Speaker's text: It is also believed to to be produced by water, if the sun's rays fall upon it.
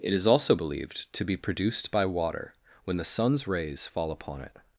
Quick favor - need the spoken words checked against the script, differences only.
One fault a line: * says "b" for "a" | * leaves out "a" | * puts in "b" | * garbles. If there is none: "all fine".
* leaves out "to"
* says "when" for "if"